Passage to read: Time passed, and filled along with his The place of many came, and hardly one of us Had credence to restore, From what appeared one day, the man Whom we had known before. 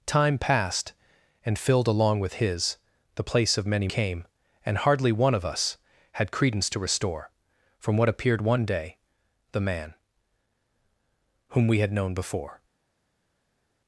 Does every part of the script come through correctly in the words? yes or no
yes